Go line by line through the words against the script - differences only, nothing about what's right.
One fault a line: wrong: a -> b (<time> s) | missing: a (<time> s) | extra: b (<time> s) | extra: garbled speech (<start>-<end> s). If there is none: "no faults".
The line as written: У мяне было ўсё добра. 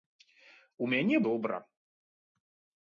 missing: было ўсё (1.2 s)